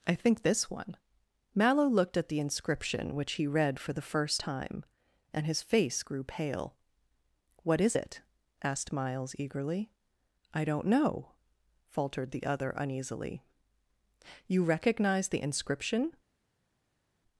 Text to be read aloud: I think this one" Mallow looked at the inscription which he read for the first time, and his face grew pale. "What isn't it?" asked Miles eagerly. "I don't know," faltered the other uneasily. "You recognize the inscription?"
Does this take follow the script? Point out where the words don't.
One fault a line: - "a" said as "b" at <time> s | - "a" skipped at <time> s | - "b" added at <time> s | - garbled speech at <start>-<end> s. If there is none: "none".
- "isn't" said as "is" at 7.8 s